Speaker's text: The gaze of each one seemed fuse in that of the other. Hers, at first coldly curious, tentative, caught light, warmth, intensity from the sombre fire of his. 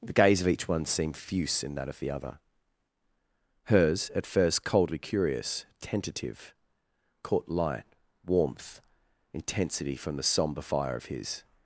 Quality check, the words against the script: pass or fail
pass